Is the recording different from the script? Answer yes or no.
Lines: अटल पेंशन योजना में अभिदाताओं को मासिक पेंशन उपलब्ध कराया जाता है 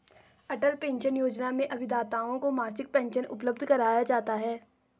no